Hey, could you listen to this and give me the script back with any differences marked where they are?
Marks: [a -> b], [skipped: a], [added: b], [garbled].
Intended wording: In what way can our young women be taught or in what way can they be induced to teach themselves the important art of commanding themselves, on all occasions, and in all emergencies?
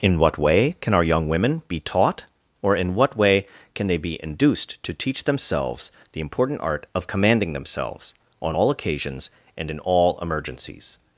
In what way can our young women be taught or in what way can they be induced to teach themselves the important art of commanding themselves, on all occasions, and in all emergencies?